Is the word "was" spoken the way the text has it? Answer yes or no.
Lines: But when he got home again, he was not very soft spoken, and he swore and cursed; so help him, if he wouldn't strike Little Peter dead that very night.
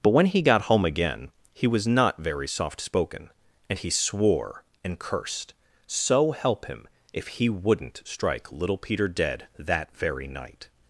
yes